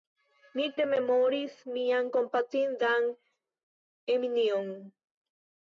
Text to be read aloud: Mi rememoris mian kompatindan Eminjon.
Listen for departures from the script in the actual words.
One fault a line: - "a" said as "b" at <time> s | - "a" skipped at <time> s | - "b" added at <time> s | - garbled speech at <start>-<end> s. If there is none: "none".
none